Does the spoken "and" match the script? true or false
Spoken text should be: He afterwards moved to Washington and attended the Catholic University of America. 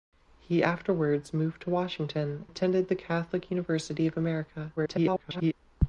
false